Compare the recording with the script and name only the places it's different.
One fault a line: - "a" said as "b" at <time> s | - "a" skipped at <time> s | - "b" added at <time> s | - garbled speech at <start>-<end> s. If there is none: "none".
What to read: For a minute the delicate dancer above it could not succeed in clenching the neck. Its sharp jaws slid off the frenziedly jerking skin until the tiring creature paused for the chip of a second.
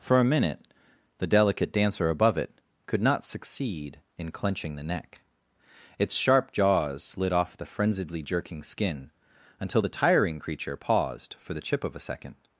none